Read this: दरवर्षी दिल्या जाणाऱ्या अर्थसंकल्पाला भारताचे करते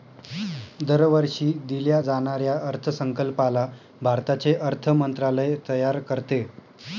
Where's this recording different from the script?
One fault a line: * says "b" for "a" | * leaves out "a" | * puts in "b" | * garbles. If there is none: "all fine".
* puts in "अर्थ मंत्रालय तयार"